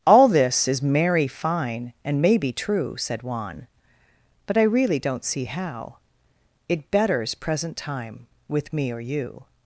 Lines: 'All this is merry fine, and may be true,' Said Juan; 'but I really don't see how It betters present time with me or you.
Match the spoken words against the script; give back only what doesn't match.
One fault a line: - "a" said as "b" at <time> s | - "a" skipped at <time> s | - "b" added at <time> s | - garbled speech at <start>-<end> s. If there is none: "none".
none